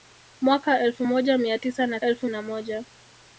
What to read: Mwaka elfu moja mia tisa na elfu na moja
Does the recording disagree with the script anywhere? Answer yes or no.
no